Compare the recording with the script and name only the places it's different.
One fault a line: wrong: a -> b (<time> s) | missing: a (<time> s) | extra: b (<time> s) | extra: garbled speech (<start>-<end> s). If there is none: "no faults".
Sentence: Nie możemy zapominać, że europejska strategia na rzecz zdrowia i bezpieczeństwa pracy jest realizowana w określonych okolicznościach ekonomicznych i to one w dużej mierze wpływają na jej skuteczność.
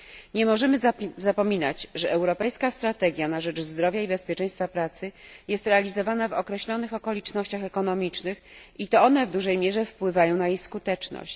no faults